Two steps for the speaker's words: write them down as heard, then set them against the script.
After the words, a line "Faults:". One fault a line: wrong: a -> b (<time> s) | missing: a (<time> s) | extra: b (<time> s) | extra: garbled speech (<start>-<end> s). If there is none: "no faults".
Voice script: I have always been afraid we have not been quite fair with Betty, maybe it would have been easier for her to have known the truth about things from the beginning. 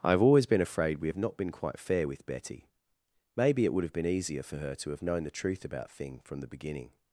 I have always been afraid we have not been quite fair with Betty, maybe it would have been easier for her to have known the truth about thing from the beginning.
Faults:
wrong: things -> thing (5.9 s)